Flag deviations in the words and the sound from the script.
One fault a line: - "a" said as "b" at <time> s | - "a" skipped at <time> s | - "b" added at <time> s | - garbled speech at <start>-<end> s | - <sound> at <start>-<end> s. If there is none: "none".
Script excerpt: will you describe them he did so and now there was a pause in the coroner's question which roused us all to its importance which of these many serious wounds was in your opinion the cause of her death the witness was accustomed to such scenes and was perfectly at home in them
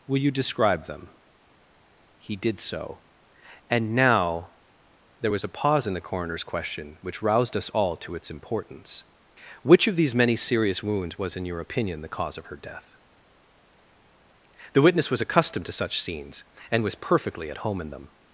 none